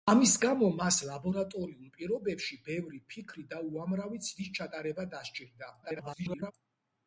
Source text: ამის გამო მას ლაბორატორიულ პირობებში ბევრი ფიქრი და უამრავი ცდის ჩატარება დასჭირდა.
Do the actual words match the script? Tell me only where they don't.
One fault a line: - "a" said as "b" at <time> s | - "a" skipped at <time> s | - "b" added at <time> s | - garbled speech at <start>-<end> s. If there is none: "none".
- garbled speech at 5.8-6.5 s